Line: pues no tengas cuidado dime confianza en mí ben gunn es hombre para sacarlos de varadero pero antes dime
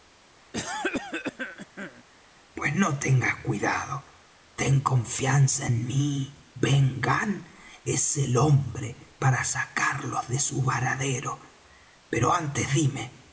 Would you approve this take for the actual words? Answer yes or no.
no